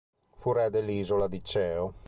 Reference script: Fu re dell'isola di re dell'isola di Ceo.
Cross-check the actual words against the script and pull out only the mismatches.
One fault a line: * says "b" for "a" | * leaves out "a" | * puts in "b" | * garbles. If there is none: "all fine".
* leaves out "re dell'isola di"